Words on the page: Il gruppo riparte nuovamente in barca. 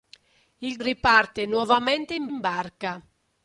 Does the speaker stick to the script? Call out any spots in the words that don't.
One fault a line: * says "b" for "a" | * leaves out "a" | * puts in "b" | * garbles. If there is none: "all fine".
* leaves out "gruppo"
* puts in "in"